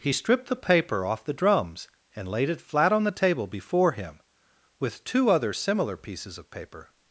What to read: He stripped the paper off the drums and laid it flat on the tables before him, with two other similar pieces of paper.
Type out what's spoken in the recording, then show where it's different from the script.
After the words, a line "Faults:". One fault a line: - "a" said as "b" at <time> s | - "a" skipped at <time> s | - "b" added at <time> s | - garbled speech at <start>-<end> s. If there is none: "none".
He stripped the paper off the drums and laid it flat on the table before him, with two other similar pieces of paper.
Faults:
- "tables" said as "table" at 3.1 s